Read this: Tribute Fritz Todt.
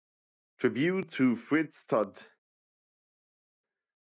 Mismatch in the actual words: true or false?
true